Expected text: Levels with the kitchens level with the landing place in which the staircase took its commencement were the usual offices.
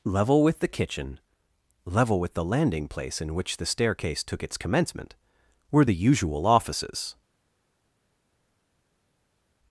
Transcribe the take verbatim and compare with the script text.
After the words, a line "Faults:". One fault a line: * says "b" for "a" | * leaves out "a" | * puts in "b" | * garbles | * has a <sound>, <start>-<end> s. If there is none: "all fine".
Level with the kitchen level with the landing place in which the staircase took its commencement were the usual offices.
Faults:
* says "Level" for "Levels"
* says "kitchen" for "kitchens"